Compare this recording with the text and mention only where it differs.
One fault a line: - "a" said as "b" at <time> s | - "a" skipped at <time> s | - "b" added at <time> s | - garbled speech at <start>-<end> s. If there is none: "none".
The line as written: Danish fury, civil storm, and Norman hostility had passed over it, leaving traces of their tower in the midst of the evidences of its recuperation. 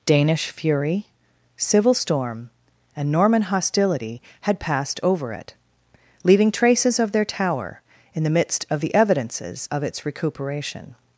none